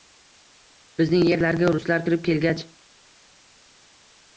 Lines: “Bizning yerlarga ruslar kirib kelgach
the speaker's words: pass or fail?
pass